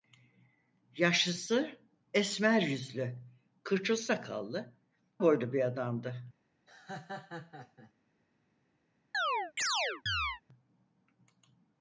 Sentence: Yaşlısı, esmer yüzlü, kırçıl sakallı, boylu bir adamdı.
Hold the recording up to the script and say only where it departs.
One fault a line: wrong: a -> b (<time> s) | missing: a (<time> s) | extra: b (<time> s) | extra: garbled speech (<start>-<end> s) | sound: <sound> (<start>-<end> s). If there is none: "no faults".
sound: laugh (6.7-7.9 s)
sound: chirp (9.1-10.4 s)